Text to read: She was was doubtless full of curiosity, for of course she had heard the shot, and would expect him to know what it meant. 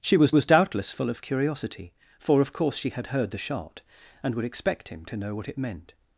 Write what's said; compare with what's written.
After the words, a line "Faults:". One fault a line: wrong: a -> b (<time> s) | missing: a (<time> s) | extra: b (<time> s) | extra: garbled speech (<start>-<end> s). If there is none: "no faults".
She was was doubtless full of curiosity, for of course she had heard the shot, and would expect him to know what it meant.
Faults:
no faults